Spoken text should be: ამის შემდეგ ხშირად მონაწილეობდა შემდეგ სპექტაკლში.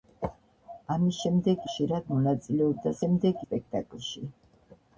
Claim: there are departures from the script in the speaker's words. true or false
false